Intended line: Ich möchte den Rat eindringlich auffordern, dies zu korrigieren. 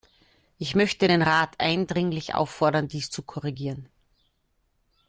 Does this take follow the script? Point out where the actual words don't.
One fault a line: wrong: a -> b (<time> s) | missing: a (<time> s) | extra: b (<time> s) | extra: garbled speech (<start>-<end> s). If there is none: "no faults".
no faults